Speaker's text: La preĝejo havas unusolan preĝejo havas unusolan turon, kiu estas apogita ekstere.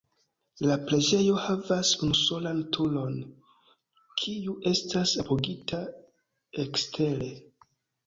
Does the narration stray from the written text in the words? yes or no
yes